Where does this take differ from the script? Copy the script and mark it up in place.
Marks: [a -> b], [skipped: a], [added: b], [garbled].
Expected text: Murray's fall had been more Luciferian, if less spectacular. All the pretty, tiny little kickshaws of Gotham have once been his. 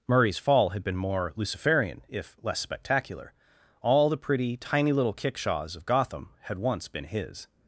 Murray's fall had been more Luciferian, if less spectacular. All the pretty, tiny little kickshaws of Gotham [have -> had] once been his.